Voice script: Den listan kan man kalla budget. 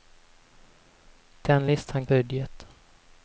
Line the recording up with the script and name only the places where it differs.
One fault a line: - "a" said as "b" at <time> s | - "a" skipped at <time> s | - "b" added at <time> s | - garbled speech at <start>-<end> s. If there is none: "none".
- "kan man kalla" skipped at 2.1 s